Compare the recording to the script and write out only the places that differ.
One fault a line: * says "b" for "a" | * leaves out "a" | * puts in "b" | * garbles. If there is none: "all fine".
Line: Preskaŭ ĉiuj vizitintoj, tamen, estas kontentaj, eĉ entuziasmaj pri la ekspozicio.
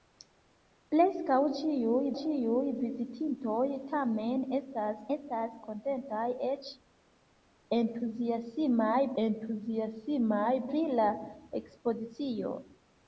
* puts in "ĉiuj"
* puts in "estas"
* puts in "entuziasmaj"